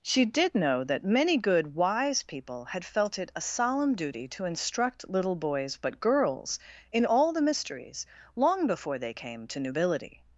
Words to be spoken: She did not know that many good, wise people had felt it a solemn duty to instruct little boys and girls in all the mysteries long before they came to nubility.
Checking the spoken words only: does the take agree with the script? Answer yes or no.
no